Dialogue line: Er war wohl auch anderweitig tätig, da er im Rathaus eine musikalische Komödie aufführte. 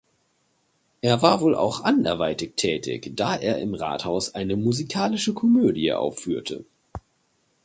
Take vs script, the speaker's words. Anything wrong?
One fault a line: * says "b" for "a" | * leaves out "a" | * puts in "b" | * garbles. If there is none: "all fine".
all fine